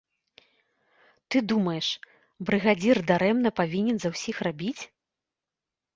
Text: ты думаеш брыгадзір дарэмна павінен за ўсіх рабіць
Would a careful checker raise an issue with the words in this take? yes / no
no